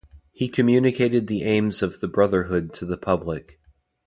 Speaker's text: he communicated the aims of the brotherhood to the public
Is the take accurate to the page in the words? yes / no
yes